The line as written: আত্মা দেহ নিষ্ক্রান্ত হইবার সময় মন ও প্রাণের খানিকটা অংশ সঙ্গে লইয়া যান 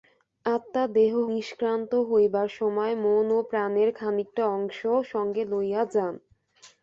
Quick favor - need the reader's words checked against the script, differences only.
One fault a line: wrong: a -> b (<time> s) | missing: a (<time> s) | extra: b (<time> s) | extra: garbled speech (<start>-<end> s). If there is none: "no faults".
no faults